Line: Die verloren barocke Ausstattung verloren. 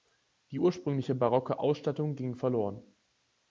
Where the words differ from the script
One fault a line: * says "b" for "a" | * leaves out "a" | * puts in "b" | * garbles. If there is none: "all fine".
* says "ursprüngliche" for "verloren"
* puts in "ging"